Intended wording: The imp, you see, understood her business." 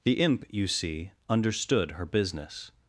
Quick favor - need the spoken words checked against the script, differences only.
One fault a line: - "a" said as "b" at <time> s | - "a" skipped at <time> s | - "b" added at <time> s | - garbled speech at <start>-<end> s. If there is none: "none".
none